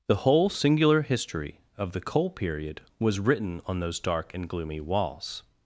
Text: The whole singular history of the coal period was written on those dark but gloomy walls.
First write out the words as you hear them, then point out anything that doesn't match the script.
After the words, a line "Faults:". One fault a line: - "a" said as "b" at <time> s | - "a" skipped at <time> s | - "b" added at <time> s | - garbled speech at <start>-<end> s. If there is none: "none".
The whole singular history of the coal period was written on those dark and gloomy walls.
Faults:
- "but" said as "and" at 4.3 s